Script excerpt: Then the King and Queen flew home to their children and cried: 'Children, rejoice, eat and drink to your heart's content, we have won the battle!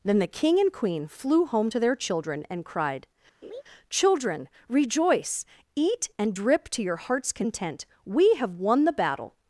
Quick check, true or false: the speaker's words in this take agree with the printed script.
false